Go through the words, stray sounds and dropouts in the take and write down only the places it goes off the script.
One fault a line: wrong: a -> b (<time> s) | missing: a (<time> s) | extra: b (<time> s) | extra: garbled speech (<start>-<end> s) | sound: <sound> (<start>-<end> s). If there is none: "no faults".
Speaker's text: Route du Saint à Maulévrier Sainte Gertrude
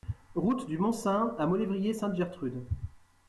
extra: Mont (0.8 s)